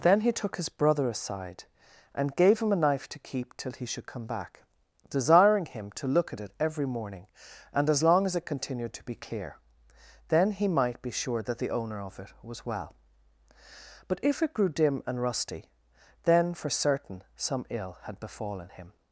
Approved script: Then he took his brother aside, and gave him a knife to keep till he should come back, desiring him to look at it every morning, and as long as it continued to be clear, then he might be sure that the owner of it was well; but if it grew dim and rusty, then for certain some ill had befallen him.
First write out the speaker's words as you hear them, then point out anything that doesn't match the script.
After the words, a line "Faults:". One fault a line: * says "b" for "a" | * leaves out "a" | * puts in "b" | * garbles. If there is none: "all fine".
Then he took his brother aside, and gave him a knife to keep till he should come back, desiring him to look at it every morning, and as long as it continued to be clear, then he might be sure that the owner of it was well; but if it grew dim and rusty, then for certain some ill had befallen him.
Faults:
all fine